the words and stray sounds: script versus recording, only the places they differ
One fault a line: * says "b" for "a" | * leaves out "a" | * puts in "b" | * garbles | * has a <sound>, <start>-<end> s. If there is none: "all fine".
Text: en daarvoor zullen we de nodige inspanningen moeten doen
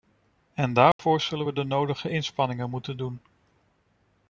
* has a dropout, 0.9-1.0 s